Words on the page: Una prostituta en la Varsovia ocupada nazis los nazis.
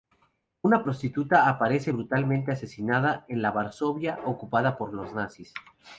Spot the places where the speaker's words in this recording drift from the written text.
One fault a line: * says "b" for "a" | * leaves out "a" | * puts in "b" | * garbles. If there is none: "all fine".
* puts in "aparece brutalmente asesinada"
* says "por" for "nazis"